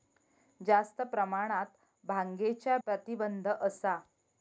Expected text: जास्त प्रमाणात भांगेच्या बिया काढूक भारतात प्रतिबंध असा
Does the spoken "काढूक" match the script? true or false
false